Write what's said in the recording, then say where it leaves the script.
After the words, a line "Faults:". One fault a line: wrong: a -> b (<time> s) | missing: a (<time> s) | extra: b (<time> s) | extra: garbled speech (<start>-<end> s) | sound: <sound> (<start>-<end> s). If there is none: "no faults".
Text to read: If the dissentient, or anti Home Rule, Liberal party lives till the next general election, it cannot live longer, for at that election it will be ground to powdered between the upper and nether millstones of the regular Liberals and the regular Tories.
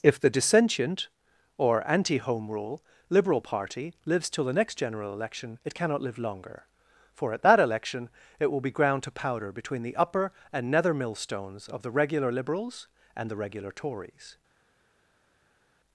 If the dissentient, or anti Home Rule, Liberal party lives till the next general election, it cannot live longer, for at that election it will be ground to powder between the upper and nether millstones of the regular Liberals and the regular Tories.
Faults:
wrong: powdered -> powder (9.1 s)